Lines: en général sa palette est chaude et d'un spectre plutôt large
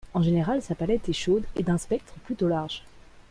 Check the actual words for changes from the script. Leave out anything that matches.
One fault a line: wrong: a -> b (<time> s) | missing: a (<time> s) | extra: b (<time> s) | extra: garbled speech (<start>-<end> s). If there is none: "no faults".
no faults